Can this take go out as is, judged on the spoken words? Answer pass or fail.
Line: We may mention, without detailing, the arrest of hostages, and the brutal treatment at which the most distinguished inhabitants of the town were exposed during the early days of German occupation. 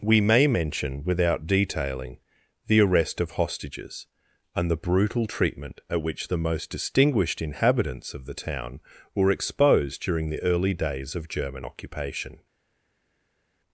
pass